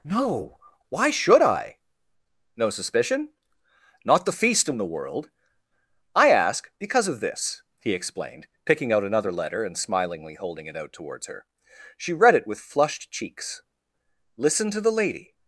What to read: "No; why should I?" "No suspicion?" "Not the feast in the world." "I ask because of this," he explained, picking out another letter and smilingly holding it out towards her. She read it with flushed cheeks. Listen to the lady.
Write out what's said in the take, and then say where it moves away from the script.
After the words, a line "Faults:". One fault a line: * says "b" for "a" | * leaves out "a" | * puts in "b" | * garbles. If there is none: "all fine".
"No; why should I?" "No suspicion?" "Not the feast in the world." "I ask because of this," he explained, picking out another letter and smilingly holding it out towards her. She read it with flushed cheeks. Listen to the lady.
Faults:
all fine